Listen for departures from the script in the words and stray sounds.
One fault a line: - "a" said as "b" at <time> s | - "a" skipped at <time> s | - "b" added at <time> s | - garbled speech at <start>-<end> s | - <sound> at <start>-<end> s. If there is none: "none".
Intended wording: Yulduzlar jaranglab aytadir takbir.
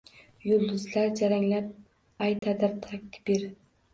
- dropout at 2.4-2.4 s